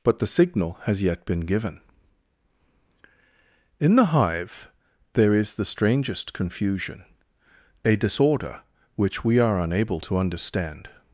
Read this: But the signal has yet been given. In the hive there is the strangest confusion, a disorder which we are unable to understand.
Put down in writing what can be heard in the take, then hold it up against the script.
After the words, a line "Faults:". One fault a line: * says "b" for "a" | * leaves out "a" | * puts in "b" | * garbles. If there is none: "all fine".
But the signal has yet been given. In the hive there is the strangest confusion, a disorder which we are unable to understand.
Faults:
all fine